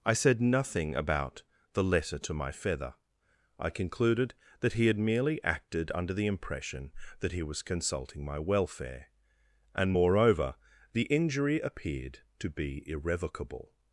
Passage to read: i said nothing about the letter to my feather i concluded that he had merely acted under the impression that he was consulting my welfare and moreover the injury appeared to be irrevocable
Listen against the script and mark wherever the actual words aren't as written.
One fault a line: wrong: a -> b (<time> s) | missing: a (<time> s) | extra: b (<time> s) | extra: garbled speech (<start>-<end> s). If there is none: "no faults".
no faults